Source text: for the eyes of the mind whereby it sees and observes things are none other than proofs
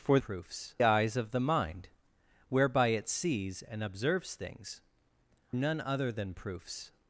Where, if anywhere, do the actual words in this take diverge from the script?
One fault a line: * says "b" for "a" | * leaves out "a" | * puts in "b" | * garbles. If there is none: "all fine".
* says "proofs" for "the"
* leaves out "are"